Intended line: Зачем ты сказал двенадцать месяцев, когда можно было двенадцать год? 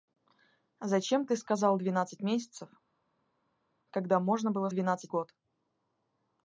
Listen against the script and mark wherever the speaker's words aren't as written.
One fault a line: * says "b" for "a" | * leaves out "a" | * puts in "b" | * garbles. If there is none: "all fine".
all fine